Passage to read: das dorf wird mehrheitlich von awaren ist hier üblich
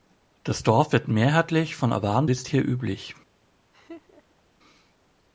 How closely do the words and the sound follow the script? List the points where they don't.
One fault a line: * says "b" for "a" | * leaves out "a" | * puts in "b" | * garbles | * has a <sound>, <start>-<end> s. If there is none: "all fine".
* has a laugh, 3.7-4.4 s